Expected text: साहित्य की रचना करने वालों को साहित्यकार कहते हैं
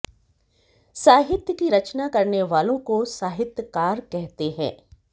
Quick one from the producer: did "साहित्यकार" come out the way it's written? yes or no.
yes